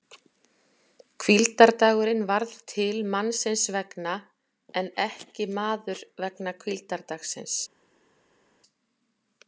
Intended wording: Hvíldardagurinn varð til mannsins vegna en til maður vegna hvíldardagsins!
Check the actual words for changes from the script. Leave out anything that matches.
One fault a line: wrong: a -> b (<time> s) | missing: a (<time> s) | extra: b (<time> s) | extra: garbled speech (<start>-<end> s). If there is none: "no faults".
wrong: til -> ekki (5.1 s)